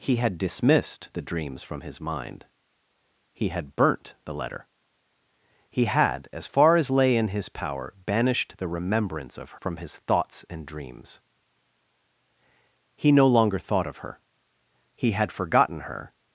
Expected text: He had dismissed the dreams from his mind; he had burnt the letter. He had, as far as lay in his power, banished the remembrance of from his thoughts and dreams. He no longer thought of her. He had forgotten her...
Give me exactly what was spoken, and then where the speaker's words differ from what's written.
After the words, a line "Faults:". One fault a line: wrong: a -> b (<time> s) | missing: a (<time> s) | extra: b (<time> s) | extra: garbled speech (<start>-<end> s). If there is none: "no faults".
He had dismissed the dreams from his mind; he had burnt the letter. He had, as far as lay in his power, banished the remembrance of from his thoughts and dreams. He no longer thought of her. He had forgotten her...
Faults:
no faults